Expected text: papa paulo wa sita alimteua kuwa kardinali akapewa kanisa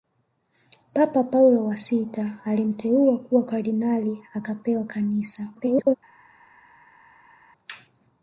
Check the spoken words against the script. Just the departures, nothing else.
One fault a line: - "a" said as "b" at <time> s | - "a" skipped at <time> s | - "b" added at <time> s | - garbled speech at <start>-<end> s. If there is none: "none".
- garbled speech at 5.5-5.9 s